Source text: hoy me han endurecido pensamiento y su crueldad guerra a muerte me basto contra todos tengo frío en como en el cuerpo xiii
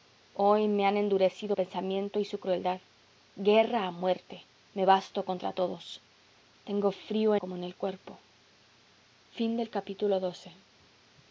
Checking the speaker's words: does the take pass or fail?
pass